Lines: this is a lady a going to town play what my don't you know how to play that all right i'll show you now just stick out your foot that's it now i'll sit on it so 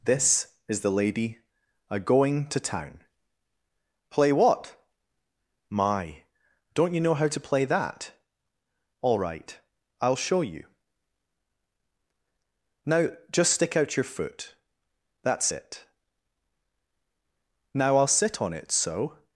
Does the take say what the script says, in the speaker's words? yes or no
no